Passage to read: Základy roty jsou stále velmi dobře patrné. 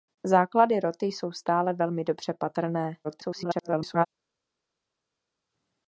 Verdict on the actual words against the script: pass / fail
fail